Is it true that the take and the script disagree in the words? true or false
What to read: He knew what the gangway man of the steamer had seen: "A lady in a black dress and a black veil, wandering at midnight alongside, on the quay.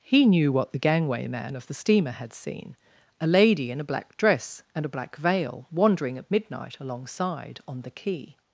false